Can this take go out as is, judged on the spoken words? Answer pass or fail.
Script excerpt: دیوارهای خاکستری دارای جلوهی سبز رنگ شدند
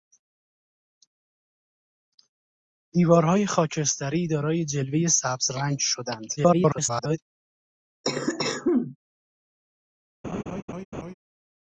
fail